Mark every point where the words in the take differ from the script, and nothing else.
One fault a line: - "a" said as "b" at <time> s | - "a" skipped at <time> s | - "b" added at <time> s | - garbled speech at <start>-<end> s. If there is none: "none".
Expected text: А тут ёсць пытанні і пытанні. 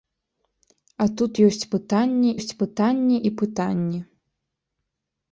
- "ёсць пытанні" added at 2.4 s